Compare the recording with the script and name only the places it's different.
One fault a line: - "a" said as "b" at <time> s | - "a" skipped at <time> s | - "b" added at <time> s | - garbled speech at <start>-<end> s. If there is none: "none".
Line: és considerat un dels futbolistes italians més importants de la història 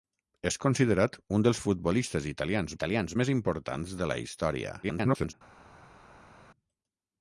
- "italians" added at 2.7 s
- garbled speech at 4.8-5.3 s